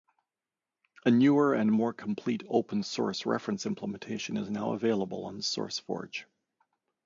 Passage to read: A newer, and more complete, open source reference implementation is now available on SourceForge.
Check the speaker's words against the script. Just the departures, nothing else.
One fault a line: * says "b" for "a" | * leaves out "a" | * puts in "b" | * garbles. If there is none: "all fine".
all fine